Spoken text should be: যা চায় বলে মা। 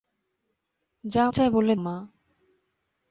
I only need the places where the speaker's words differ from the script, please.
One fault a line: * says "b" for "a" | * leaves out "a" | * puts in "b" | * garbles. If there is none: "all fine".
all fine